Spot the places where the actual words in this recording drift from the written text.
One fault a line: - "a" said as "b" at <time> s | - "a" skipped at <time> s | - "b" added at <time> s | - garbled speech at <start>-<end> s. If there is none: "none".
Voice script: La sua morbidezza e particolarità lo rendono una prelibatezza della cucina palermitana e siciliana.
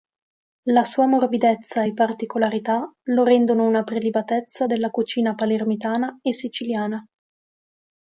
none